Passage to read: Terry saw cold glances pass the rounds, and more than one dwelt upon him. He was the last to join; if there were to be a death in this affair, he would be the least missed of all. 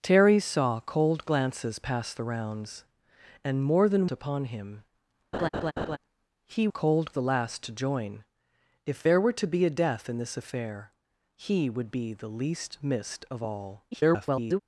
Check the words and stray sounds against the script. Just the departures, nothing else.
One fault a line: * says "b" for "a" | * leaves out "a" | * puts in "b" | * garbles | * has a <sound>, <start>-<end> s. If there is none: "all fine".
* leaves out "one dwelt"
* has a laugh, 5.3-6.0 s
* says "cold" for "was"
* garbles